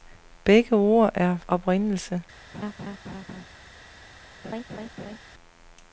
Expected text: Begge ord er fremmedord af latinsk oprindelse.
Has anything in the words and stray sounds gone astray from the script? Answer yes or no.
yes